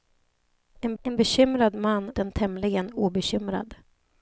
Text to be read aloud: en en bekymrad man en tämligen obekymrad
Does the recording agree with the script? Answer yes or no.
yes